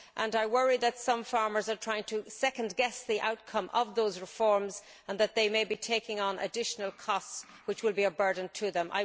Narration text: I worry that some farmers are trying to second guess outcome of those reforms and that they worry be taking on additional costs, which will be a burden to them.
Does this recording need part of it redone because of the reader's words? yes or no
yes